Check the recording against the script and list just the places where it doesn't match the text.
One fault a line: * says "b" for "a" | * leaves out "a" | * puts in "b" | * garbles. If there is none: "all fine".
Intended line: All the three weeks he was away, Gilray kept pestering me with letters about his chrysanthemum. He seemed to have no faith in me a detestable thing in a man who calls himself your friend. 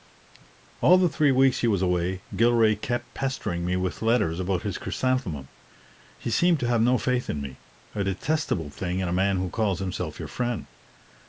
all fine